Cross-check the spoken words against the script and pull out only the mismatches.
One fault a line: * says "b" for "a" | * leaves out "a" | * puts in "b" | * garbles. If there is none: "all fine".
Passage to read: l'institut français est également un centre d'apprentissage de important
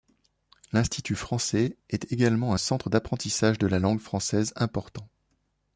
* puts in "la langue française"